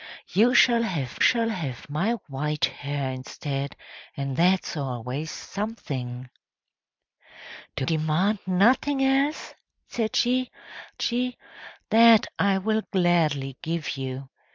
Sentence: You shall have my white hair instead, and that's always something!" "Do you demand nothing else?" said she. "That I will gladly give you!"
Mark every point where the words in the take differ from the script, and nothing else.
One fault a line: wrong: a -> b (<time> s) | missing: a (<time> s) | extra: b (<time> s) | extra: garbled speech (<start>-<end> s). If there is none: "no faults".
extra: shall have (1.2 s)
missing: you (7.9 s)
extra: she (11.0 s)